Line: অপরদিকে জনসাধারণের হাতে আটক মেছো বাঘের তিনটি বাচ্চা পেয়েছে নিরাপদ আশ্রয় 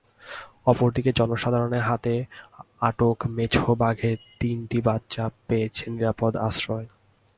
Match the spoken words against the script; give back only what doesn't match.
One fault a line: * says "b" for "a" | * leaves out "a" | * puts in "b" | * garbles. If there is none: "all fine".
all fine